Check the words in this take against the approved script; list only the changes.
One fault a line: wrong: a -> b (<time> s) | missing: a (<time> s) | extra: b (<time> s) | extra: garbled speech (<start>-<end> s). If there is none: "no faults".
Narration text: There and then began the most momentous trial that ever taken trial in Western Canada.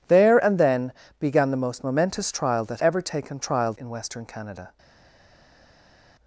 no faults